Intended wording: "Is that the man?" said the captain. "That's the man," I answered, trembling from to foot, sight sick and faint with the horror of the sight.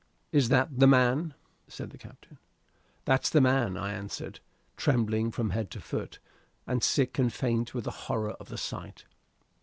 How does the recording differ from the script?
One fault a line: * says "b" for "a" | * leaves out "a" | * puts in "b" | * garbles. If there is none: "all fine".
* puts in "head"
* says "and" for "sight"